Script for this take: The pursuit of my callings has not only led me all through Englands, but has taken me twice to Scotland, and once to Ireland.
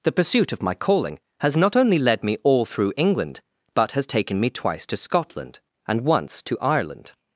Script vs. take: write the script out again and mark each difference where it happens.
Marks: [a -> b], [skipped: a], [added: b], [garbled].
The pursuit of my [callings -> calling] has not only led me all through [Englands, -> England] but has taken me twice to Scotland, and once to Ireland.